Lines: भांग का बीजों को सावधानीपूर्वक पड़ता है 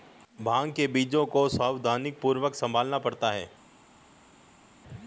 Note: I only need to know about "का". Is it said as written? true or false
false